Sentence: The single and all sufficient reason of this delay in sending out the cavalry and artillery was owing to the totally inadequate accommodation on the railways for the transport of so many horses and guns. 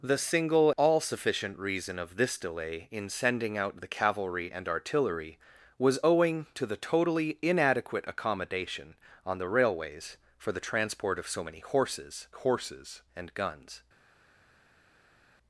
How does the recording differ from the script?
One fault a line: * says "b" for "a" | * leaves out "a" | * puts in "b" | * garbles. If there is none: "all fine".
* leaves out "and"
* puts in "horses"